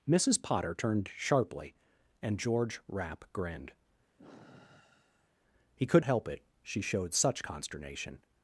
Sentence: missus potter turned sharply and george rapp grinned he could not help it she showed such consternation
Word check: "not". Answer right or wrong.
wrong